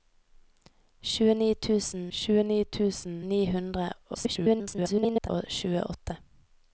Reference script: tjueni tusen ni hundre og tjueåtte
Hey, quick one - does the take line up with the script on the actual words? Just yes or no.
no